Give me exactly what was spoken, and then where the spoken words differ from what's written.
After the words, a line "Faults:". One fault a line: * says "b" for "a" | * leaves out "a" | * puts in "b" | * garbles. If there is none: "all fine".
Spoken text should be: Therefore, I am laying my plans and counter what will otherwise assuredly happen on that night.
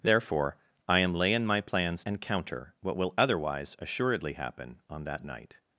Therefore, I am laying my plans and counter what will otherwise assuredly happen on that night.
Faults:
all fine